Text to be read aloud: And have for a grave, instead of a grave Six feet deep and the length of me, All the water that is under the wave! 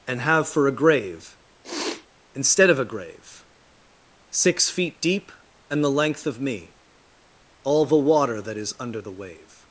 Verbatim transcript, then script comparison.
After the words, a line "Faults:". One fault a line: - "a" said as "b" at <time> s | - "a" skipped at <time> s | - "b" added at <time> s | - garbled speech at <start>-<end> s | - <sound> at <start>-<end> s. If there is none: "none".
And have for a grave, instead of a grave Six feet deep and the length of me, All the water that is under the wave!
Faults:
- sniff at 1.6-2.1 s